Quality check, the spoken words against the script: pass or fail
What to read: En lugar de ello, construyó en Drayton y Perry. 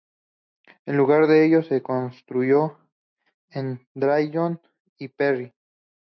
fail